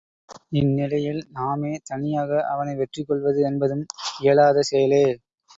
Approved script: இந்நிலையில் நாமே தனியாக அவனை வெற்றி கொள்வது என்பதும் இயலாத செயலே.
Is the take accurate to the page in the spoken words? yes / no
yes